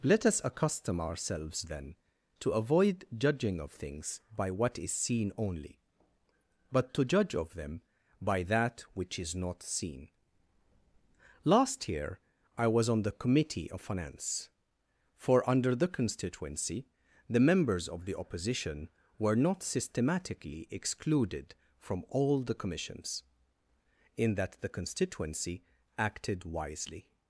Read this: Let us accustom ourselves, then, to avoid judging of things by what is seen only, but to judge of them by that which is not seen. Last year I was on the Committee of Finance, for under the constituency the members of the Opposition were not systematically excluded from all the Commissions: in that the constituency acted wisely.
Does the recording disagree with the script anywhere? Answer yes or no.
no